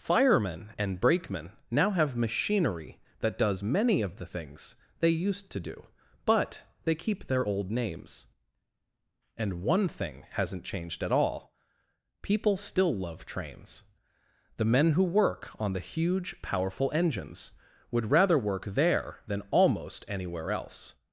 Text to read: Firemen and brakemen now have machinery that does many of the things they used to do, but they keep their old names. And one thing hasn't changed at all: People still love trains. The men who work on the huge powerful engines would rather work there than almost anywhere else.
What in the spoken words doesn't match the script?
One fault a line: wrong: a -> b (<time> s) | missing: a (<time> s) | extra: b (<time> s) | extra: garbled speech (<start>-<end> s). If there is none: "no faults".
no faults